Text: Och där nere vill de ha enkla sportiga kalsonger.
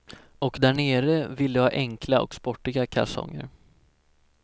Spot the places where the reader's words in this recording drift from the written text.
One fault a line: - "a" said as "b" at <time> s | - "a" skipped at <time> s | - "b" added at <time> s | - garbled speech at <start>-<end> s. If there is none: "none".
- "och" added at 2.2 s